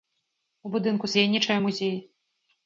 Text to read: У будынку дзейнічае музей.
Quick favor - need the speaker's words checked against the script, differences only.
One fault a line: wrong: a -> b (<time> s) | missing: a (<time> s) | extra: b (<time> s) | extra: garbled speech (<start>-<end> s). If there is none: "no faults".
no faults